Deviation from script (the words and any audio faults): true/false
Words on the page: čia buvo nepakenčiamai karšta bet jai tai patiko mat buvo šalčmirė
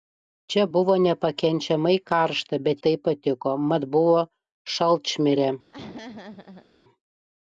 true